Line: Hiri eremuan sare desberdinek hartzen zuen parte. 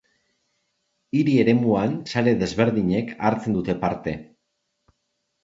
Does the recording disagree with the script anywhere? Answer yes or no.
yes